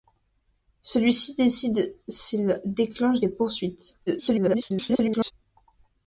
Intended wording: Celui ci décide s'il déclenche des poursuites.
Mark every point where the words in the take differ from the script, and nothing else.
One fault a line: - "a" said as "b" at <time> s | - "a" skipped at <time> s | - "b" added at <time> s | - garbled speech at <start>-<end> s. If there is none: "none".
- garbled speech at 4.1-5.3 s